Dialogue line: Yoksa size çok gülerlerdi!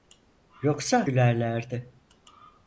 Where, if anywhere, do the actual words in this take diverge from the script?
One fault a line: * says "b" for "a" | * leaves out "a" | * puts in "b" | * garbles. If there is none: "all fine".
* leaves out "size çok"